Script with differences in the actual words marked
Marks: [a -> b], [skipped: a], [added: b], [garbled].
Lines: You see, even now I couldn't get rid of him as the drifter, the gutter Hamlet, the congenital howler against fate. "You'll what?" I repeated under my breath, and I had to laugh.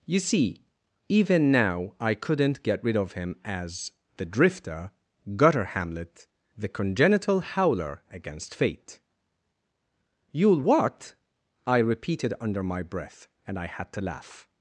You see, even now I couldn't get rid of him as the drifter, [skipped: the] gutter Hamlet, the congenital howler against fate. "You'll what?" I repeated under my breath, and I had to laugh.